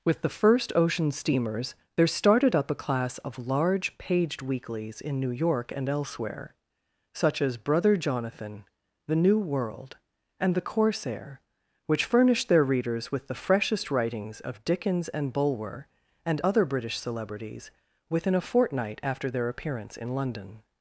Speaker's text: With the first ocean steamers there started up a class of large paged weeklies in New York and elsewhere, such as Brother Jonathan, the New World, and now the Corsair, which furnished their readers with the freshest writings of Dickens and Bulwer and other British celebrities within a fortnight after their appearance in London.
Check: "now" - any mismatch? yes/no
yes